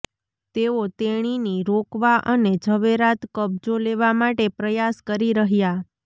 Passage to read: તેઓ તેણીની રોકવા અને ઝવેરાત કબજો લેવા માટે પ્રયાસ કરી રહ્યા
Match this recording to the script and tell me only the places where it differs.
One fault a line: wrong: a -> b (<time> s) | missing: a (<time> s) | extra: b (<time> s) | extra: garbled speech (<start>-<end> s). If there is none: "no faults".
no faults